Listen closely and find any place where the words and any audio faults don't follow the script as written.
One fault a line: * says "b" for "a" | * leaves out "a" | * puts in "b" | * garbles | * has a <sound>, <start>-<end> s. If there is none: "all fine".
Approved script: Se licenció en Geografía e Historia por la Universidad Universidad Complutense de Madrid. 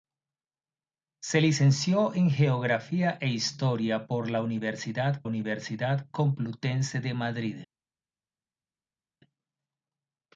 all fine